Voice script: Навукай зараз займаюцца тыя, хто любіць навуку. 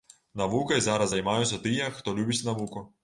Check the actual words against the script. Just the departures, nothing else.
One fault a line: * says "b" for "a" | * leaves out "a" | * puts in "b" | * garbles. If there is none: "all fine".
all fine